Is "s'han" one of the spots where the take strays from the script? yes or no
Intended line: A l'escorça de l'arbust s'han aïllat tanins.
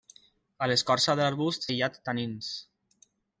yes